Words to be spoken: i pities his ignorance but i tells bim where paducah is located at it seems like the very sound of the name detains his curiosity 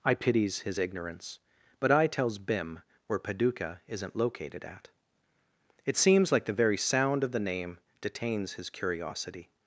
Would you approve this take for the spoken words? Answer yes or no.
no